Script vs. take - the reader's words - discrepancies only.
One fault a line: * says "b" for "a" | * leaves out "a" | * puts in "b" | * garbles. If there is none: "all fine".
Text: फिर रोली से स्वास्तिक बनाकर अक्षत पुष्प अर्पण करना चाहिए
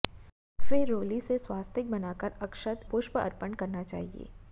all fine